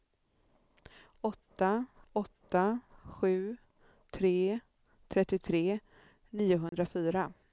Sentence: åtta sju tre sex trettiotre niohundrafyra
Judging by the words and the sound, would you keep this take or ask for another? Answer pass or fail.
fail